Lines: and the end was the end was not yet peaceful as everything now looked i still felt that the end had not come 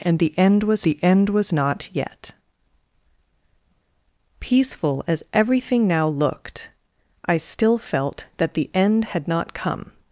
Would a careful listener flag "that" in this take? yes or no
no